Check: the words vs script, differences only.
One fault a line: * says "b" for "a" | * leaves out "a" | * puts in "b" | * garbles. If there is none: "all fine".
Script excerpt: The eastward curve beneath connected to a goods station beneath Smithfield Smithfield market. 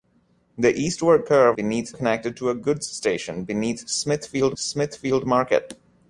all fine